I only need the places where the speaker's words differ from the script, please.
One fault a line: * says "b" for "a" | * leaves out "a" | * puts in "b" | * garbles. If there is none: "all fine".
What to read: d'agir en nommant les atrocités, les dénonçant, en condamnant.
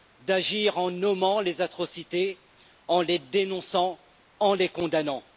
* puts in "en"
* puts in "les"